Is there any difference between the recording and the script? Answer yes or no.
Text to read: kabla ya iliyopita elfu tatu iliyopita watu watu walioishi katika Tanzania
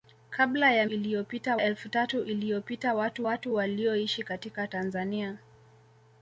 no